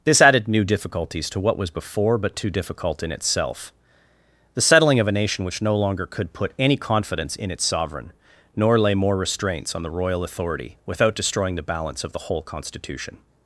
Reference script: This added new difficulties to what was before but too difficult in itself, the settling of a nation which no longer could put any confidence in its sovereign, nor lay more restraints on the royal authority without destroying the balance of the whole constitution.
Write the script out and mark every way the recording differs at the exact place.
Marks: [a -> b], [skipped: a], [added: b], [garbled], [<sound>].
This added new difficulties to what was before but too difficult in itself, the settling of a nation which no longer could put any confidence in its sovereign, nor lay more restraints on the royal authority without destroying the balance of the whole constitution.